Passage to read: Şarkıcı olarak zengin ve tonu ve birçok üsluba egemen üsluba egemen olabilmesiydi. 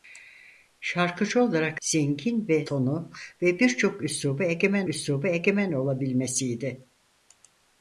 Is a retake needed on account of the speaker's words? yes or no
no